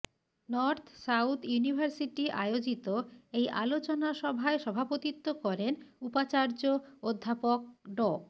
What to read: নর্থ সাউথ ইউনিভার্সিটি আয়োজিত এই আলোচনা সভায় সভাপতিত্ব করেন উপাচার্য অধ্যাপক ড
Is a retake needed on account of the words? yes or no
no